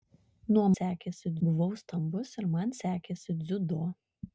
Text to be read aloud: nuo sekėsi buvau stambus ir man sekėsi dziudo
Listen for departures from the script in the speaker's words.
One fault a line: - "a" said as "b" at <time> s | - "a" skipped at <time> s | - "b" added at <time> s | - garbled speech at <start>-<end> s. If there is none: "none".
none